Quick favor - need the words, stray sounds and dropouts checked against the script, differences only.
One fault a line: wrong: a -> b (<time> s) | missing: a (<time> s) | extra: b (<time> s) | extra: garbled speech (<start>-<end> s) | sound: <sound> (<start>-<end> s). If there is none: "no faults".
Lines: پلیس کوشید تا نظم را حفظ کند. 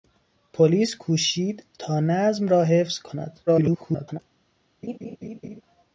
extra: garbled speech (3.5-4.2 s)
sound: laugh (4.8-5.6 s)